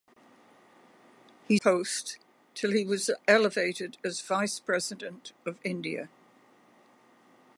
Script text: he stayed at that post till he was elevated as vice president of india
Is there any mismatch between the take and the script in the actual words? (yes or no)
yes